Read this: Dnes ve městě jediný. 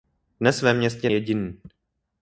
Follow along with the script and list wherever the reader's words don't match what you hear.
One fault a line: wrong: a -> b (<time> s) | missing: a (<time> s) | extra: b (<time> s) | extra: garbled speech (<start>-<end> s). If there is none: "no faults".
no faults